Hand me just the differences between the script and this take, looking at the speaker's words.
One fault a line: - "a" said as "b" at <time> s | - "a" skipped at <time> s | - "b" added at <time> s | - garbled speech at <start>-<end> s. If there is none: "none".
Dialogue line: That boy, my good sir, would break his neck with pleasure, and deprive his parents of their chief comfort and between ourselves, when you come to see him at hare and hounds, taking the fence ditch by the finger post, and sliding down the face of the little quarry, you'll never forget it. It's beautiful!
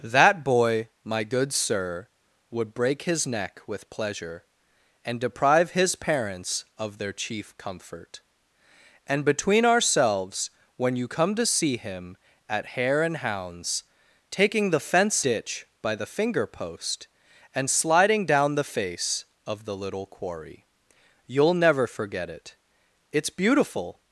none